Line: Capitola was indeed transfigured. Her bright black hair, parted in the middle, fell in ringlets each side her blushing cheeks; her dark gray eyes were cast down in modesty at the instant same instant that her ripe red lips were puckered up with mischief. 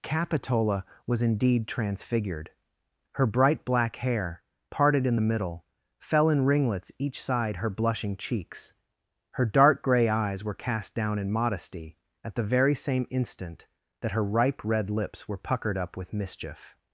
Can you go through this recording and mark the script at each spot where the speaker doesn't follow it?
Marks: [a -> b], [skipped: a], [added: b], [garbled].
Capitola was indeed transfigured. Her bright black hair, parted in the middle, fell in ringlets each side her blushing cheeks; her dark gray eyes were cast down in modesty at the [instant -> very] same instant that her ripe red lips were puckered up with mischief.